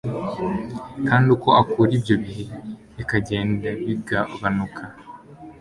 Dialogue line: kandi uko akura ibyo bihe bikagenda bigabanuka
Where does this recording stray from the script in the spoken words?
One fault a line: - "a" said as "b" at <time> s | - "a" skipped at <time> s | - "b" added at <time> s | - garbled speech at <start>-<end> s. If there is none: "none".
none